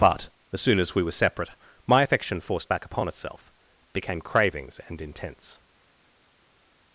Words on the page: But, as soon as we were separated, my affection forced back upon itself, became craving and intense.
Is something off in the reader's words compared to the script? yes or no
yes